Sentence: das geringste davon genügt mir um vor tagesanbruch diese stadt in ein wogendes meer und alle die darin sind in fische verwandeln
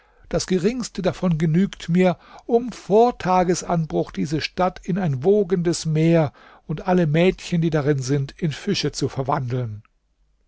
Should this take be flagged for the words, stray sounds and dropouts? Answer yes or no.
yes